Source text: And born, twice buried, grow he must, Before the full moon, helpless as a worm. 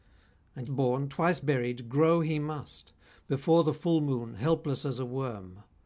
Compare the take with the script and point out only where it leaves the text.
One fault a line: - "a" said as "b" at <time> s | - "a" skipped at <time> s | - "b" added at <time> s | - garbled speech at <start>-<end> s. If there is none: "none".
none